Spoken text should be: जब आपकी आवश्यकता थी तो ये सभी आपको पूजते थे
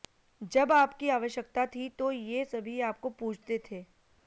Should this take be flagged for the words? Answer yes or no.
no